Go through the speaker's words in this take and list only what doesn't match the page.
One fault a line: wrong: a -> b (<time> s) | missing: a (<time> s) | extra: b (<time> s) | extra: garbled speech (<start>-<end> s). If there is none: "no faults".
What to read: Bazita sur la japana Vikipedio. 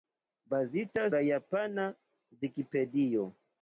missing: sur (1.1 s)